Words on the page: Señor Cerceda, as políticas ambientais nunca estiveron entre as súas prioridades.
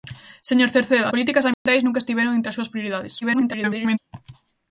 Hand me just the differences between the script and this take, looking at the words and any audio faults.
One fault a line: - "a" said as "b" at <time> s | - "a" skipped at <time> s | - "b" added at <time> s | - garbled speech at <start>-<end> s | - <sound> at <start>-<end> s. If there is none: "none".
- "as" skipped at 1.1 s
- dropout at 1.5-1.7 s
- garbled speech at 3.2-4.0 s